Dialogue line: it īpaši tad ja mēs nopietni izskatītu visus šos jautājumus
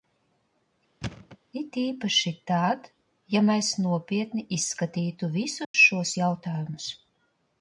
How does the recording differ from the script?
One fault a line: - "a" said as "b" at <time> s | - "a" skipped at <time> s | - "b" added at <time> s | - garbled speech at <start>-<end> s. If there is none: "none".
none